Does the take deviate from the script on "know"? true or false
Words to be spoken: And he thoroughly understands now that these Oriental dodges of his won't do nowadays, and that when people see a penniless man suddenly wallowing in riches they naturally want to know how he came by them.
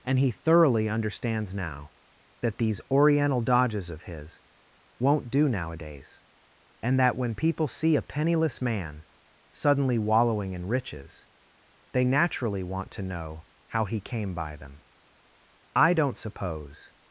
false